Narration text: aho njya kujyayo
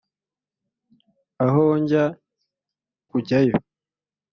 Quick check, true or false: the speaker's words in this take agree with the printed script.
true